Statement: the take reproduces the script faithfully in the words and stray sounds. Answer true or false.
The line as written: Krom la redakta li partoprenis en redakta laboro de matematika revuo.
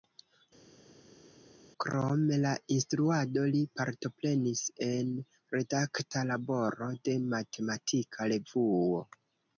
false